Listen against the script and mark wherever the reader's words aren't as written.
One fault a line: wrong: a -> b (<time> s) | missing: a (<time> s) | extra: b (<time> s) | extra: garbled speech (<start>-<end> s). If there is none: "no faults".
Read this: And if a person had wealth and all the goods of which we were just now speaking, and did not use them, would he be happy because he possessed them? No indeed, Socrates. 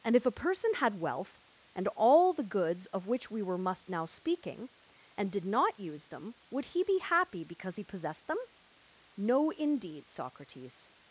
wrong: just -> must (3.6 s)